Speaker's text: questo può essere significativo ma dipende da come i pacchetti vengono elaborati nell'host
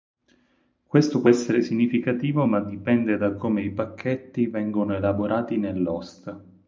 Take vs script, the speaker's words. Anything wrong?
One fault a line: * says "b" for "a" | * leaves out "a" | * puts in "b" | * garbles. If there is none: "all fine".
all fine